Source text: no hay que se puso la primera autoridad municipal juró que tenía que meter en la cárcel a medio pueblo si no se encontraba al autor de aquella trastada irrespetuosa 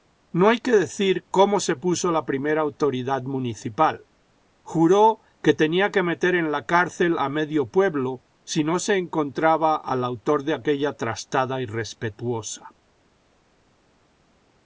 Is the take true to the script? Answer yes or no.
no